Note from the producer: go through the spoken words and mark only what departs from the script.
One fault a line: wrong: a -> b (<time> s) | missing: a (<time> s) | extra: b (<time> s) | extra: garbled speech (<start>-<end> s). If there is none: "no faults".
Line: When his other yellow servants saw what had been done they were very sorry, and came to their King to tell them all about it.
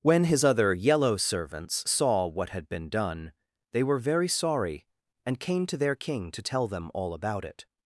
no faults